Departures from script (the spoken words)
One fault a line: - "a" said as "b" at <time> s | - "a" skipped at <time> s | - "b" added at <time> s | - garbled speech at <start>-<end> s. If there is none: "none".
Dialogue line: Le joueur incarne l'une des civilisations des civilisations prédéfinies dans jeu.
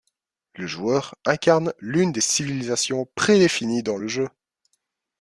- "des civilisations" skipped at 3.1 s
- "le" added at 4.0 s